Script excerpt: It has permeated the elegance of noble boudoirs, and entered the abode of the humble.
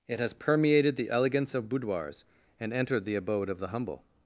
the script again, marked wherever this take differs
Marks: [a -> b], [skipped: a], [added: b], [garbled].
It has permeated the elegance of [skipped: noble] boudoirs, and entered the abode of the humble.